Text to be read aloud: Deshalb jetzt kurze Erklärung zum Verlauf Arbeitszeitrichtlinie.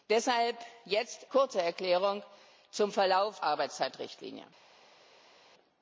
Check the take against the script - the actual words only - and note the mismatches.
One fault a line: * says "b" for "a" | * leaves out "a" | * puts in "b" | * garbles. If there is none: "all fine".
all fine